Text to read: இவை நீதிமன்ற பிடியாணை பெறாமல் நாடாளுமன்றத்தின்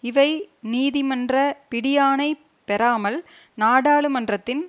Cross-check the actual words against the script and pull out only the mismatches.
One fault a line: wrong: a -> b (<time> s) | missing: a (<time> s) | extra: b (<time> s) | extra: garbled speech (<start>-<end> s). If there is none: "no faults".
no faults